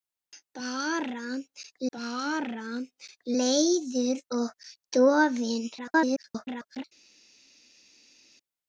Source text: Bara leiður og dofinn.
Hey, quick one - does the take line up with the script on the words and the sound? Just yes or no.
no